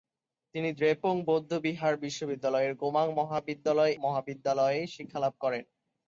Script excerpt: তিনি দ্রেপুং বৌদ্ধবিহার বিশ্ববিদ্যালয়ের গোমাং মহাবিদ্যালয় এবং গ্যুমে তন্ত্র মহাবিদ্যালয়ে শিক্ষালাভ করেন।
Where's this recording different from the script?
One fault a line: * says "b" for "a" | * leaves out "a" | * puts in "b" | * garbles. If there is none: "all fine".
* leaves out "এবং গ্যুমে তন্ত্র"